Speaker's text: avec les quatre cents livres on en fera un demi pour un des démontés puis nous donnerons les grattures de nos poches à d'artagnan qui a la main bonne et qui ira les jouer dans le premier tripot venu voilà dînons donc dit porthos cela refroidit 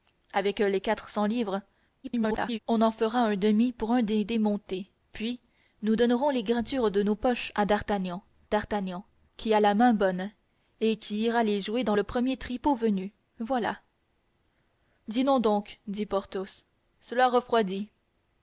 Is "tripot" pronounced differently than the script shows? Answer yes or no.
no